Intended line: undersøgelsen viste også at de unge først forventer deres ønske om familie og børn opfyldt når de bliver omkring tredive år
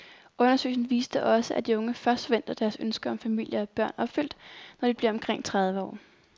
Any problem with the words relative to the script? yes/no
no